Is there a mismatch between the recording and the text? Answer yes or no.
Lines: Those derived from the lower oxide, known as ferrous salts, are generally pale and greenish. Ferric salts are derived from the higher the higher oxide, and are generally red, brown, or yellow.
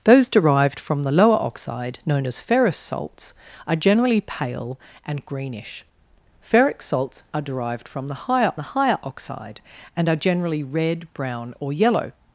no